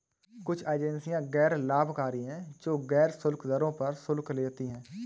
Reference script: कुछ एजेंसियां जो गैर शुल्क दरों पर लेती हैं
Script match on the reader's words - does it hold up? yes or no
no